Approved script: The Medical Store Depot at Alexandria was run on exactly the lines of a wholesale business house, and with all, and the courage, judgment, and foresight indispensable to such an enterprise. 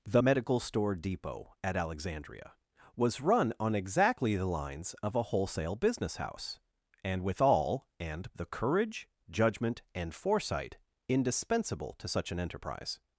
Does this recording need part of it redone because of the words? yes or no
no